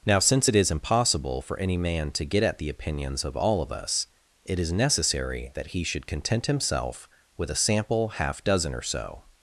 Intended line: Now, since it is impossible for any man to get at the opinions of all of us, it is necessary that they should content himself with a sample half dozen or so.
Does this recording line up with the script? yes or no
no